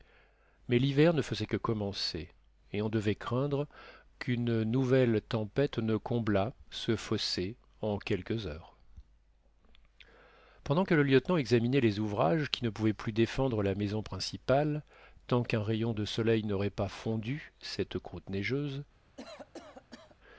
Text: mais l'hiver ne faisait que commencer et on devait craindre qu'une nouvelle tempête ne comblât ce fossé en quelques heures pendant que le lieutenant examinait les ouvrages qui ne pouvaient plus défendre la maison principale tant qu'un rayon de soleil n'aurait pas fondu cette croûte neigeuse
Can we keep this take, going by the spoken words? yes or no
yes